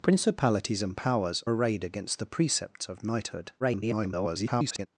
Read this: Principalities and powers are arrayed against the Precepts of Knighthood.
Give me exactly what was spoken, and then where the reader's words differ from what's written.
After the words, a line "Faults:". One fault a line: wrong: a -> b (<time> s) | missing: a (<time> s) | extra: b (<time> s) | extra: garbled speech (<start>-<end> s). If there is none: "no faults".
Principalities and powers arrayed against the Precepts of Knighthood. [garbled]
Faults:
missing: are (1.4 s)
extra: garbled speech (3.6-4.9 s)